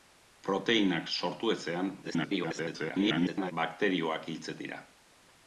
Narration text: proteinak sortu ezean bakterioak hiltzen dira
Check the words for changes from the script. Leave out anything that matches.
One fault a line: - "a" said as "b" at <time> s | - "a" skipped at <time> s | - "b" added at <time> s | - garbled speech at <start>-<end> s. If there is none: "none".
- garbled speech at 2.0-3.5 s